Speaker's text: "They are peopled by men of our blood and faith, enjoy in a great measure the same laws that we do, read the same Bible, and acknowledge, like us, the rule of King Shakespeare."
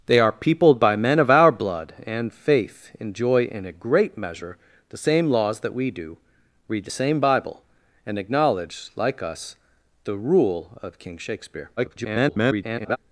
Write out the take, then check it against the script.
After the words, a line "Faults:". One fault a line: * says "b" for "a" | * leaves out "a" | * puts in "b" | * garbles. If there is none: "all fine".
"They are peopled by men of our blood and faith, enjoy in a great measure the same laws that we do, read the same Bible, and acknowledge, like us, the rule of King Shakespeare." [garbled]
Faults:
* garbles